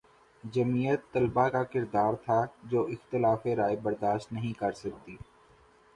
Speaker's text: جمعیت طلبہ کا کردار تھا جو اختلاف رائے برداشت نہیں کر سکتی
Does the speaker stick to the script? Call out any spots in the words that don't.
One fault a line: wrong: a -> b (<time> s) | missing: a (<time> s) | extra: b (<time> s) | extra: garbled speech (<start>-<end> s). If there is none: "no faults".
no faults